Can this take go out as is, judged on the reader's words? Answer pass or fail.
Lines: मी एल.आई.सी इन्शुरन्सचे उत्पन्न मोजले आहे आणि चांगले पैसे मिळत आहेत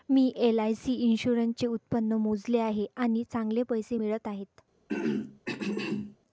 pass